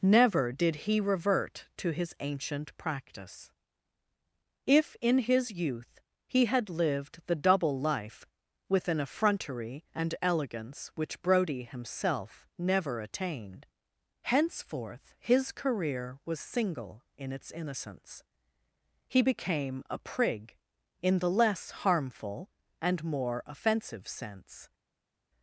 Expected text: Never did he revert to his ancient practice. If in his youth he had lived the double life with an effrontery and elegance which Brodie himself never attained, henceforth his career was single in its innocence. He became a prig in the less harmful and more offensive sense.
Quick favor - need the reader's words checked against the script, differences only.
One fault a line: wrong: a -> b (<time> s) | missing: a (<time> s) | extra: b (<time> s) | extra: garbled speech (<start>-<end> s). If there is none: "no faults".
no faults